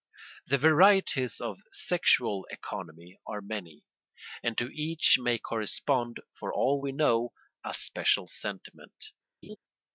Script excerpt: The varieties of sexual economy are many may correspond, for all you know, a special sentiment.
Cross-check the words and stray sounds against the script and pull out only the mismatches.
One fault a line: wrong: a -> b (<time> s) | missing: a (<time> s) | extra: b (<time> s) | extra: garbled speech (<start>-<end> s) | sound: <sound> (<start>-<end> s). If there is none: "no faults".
extra: and to each (4.4 s)
wrong: you -> we (6.8 s)
sound: laugh (9.4-9.6 s)